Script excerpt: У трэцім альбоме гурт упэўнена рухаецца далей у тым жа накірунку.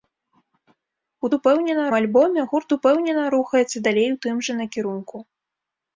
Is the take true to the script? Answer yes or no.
no